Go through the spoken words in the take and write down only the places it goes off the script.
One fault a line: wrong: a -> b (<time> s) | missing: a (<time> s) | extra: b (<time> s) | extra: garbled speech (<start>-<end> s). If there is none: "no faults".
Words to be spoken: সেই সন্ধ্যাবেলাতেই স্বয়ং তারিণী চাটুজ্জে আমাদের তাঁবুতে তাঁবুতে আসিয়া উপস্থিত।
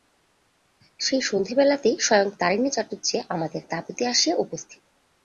missing: তাঁবুতে (4.0 s)